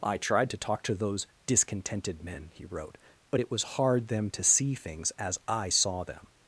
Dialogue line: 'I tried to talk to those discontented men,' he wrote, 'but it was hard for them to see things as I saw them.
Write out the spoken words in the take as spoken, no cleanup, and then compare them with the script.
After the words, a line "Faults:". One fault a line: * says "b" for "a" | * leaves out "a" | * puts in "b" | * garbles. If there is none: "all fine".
'I tried to talk to those discontented men,' he wrote, 'but it was hard them to see things as I saw them.
Faults:
* leaves out "for"